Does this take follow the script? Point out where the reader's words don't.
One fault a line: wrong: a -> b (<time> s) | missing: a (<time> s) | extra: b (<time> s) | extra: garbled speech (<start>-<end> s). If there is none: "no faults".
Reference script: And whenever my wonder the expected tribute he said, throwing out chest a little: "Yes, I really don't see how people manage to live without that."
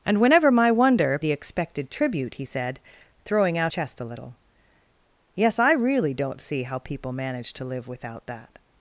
no faults